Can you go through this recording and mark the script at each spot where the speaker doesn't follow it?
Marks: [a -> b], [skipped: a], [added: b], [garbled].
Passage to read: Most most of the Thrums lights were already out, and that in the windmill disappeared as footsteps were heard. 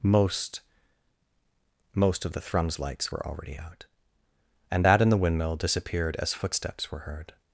Most most of the Thrums lights were already out, and that in the windmill disappeared as footsteps were heard.